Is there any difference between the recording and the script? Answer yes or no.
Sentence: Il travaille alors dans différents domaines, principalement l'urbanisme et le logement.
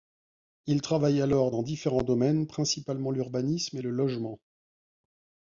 no